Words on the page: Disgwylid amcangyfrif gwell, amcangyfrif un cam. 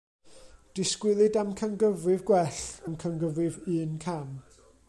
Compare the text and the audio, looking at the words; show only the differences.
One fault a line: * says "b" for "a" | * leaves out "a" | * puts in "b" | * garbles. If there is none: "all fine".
all fine